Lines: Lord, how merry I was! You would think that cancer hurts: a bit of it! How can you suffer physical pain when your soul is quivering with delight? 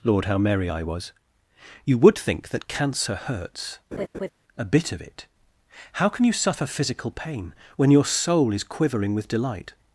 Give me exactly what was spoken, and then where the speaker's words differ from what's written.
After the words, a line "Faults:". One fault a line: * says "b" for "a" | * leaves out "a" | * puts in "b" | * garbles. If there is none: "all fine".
Lord, how merry I was! You would think that cancer hurts: a bit of it! How can you suffer physical pain when your soul is quivering with delight?
Faults:
all fine